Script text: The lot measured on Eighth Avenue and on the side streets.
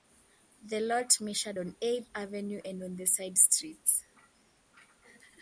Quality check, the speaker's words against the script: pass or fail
pass